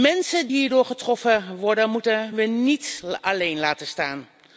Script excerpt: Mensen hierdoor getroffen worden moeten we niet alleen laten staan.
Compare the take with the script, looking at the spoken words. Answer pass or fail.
pass